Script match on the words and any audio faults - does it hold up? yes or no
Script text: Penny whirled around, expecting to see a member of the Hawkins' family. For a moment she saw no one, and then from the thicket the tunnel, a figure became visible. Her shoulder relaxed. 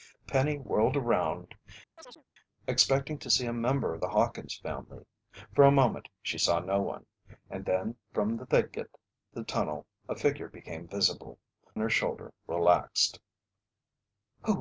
no